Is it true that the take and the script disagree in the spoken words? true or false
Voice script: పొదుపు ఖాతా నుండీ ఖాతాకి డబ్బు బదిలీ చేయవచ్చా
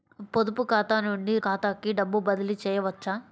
false